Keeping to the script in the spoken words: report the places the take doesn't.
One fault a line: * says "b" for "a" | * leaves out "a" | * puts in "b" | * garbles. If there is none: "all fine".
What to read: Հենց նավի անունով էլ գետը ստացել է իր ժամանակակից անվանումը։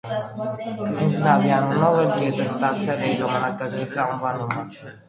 all fine